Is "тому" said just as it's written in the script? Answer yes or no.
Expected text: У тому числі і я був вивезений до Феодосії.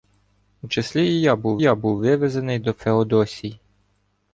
no